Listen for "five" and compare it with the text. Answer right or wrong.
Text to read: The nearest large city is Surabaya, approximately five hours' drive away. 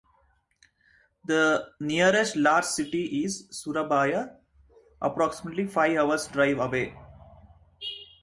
right